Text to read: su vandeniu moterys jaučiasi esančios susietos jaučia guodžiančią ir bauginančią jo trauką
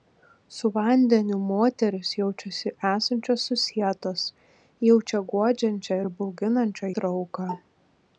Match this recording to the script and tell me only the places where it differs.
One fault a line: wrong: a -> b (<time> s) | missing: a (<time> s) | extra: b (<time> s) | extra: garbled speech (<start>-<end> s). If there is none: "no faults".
missing: jo (7.0 s)